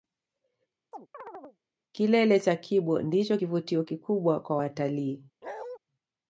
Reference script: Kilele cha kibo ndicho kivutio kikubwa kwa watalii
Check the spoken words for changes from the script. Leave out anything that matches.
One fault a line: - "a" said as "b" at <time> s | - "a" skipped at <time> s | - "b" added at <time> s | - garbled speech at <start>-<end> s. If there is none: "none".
none